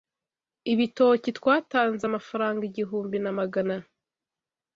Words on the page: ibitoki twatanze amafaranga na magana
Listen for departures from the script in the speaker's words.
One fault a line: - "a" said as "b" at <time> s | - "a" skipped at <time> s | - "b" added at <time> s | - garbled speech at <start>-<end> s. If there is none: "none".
- "igihumbi" added at 2.7 s